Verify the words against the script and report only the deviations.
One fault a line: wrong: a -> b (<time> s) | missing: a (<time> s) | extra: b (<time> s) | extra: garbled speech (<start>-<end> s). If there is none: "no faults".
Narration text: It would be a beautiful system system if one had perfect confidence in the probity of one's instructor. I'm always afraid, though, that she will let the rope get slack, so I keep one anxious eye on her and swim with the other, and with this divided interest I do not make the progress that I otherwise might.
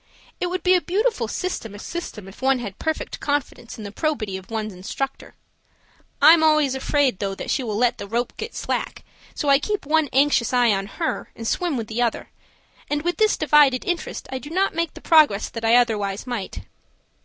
no faults